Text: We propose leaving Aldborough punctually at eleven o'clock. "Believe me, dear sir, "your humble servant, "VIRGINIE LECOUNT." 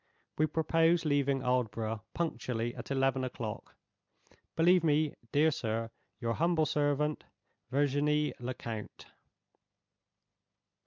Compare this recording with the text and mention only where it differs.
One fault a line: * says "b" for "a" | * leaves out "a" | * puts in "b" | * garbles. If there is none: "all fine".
all fine